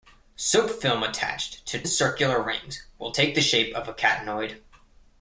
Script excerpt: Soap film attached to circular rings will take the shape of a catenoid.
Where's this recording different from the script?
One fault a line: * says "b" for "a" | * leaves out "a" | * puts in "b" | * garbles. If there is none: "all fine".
all fine